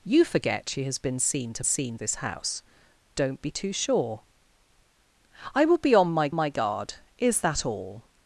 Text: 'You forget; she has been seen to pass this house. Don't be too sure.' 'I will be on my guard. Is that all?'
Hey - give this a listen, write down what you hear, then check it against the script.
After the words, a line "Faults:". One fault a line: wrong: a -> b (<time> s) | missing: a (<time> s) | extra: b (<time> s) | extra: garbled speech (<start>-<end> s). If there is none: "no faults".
'You forget; she has been seen to seen this house. Don't be too sure.' 'I will be on my my guard. Is that all?'
Faults:
wrong: pass -> seen (1.6 s)
extra: my (6.3 s)